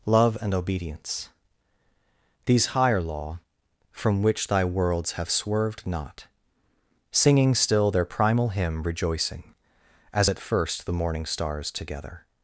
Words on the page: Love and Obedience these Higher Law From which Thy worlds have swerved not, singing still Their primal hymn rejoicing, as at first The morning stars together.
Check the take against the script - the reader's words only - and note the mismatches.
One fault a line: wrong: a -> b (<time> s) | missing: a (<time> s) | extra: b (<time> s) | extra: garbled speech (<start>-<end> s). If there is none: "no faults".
no faults